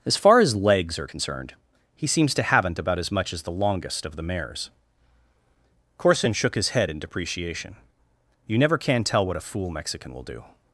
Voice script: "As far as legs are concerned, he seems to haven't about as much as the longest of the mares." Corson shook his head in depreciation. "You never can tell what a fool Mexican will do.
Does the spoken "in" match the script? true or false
true